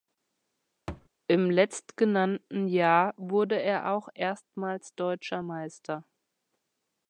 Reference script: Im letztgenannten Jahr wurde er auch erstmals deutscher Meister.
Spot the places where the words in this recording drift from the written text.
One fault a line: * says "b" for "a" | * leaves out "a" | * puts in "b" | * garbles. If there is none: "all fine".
all fine